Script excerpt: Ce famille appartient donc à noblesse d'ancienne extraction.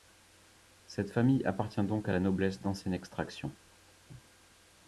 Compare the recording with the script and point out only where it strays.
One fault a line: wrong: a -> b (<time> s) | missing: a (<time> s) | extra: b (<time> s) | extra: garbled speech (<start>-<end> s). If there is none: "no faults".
wrong: Ce -> Cette (0.9 s)
extra: la (2.1 s)